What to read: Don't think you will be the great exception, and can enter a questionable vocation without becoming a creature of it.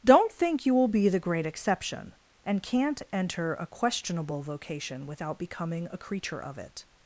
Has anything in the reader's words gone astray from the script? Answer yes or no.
yes